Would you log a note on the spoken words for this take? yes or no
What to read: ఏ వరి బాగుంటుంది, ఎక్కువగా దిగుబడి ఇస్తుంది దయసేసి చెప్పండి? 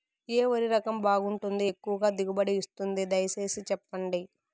yes